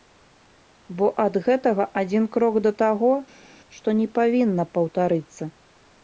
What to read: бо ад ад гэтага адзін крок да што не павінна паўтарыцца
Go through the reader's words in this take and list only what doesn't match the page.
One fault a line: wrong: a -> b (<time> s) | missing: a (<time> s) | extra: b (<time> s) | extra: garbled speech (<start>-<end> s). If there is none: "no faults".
missing: ад (1.4 s)
extra: таго (2.9 s)